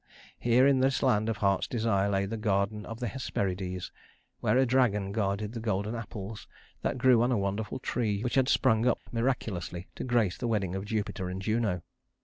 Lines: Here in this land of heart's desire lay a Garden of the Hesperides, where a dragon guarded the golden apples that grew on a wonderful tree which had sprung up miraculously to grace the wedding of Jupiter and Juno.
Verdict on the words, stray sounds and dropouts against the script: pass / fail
fail